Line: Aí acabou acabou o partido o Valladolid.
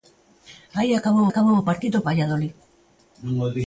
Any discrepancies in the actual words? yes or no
no